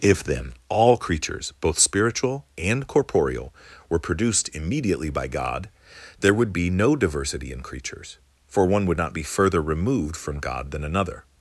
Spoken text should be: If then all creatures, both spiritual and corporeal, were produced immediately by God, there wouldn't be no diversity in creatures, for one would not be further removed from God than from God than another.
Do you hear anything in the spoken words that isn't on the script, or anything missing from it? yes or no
yes